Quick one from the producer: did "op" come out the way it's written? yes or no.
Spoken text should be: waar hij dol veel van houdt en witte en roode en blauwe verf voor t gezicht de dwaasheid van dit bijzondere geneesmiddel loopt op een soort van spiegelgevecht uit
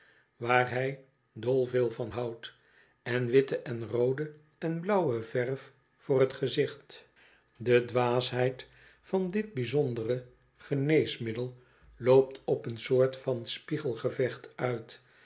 yes